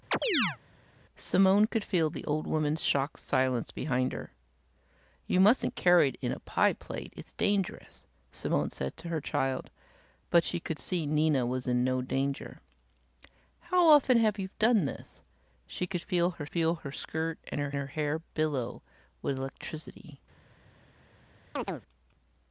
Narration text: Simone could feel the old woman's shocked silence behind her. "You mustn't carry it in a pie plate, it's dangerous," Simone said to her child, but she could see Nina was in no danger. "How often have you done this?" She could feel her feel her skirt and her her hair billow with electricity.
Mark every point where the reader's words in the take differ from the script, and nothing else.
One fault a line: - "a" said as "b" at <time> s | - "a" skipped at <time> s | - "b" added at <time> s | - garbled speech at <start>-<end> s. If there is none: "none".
none